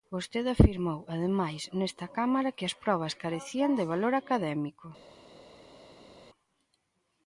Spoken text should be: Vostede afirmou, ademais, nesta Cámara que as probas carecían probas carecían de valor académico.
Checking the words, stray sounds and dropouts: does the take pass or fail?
fail